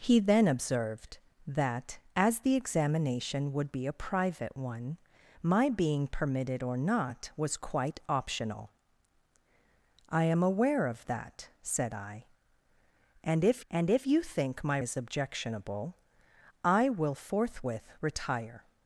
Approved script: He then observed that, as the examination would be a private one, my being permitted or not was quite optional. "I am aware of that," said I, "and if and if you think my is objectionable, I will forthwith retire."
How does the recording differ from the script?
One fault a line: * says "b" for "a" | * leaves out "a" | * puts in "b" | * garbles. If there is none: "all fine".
all fine